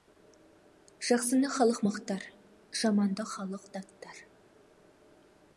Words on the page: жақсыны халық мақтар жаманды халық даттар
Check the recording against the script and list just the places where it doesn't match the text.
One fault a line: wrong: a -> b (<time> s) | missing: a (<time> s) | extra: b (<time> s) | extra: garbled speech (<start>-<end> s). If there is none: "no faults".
no faults